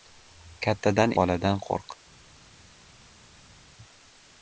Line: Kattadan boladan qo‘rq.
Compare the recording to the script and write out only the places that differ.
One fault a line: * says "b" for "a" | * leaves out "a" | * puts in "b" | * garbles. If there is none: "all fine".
all fine